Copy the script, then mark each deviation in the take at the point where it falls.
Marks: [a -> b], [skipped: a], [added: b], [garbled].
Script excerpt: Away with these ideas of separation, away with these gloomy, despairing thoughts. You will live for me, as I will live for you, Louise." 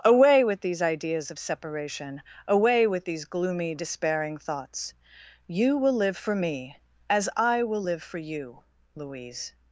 Away with these ideas of separation, away with these gloomy, despairing thoughts. You will live for me, as I will live for you, Louise."